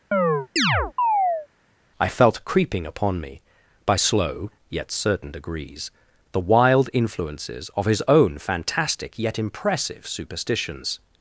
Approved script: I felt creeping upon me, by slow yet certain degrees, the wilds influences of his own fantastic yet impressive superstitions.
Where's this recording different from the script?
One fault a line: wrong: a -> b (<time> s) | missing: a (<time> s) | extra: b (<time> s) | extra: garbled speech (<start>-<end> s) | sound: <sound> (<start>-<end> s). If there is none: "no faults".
sound: chirp (0.1-1.5 s)
wrong: wilds -> wild (6.4 s)